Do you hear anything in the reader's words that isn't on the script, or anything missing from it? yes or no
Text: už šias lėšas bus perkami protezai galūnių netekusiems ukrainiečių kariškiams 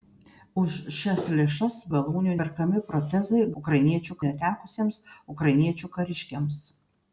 yes